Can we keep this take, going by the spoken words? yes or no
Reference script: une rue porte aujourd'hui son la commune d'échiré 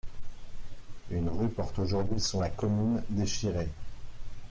yes